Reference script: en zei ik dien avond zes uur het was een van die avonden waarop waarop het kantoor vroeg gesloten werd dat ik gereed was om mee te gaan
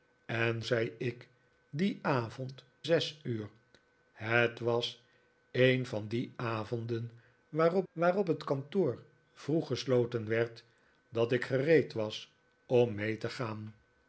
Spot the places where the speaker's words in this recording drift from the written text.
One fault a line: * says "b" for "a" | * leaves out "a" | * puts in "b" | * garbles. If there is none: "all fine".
all fine